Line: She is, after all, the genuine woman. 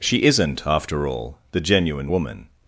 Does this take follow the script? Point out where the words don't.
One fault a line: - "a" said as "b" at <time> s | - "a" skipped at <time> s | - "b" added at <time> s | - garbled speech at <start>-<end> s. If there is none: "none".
- "is" said as "isn't" at 0.2 s